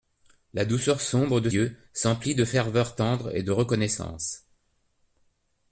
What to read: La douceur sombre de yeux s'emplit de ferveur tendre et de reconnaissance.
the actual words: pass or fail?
pass